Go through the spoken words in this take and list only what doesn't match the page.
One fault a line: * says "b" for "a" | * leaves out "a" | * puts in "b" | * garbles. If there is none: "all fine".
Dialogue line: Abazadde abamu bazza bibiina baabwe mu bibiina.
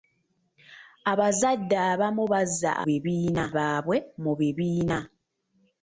all fine